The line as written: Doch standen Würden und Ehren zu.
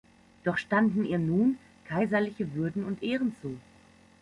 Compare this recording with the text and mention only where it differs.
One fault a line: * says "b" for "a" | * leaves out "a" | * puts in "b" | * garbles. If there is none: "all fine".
* puts in "ihr nun kaiserliche"